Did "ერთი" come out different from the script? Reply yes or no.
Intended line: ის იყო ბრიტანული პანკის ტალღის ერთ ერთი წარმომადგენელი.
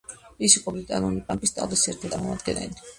yes